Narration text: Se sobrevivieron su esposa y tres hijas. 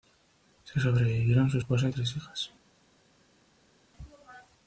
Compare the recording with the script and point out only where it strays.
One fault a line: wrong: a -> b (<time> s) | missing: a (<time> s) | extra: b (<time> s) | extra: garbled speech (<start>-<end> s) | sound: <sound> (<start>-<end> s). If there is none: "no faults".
no faults